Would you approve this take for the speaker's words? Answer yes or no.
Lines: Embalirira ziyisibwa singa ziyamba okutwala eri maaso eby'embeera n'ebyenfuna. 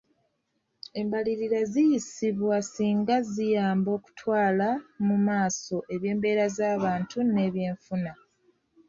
no